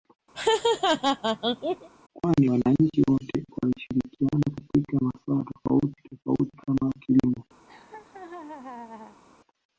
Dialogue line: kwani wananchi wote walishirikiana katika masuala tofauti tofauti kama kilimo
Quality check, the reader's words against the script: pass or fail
pass